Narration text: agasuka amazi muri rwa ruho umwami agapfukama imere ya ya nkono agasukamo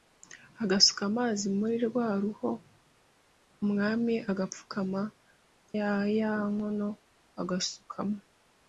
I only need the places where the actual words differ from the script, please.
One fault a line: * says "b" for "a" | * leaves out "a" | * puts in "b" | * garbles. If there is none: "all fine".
* leaves out "imere"